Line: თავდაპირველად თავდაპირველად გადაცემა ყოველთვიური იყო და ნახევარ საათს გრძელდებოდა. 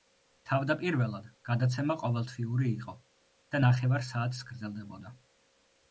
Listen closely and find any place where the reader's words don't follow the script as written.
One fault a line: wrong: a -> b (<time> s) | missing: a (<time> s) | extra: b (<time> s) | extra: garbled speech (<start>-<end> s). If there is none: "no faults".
missing: თავდაპირველად (1.3 s)